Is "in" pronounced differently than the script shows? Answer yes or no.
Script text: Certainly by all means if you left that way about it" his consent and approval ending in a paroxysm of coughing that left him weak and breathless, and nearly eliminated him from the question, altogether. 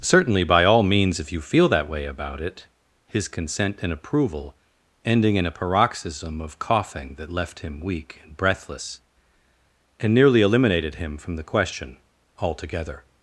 no